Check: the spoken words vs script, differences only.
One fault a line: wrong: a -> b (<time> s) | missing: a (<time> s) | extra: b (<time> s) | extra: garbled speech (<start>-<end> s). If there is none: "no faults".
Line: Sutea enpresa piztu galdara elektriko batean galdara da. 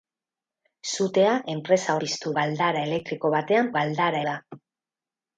no faults